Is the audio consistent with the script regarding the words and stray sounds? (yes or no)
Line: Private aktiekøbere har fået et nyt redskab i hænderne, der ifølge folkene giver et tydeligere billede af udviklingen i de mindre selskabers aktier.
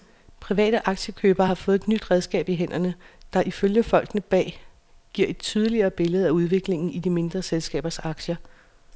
no